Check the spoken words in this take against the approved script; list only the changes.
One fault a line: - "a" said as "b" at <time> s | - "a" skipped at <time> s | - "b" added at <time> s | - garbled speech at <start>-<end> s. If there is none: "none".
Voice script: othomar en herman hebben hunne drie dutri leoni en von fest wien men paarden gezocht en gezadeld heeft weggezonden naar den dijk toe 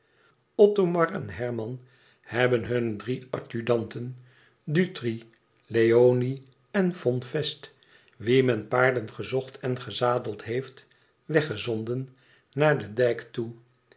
- "adjudanten" added at 3.4 s